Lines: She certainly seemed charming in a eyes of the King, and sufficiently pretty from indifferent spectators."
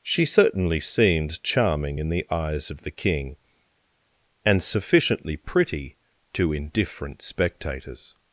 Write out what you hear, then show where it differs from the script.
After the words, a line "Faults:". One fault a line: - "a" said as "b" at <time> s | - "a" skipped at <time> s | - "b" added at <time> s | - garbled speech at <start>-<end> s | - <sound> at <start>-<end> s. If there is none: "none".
She certainly seemed charming in the eyes of the King, and sufficiently pretty to indifferent spectators."
Faults:
- "a" said as "the" at 2.1 s
- "from" said as "to" at 6.3 s